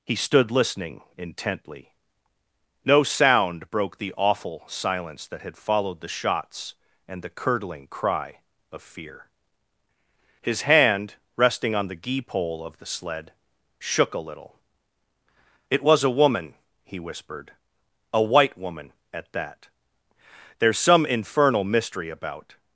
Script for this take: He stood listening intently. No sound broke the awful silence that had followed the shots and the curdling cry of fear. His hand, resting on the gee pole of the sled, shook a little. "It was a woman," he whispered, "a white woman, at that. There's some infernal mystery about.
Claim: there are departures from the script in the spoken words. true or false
false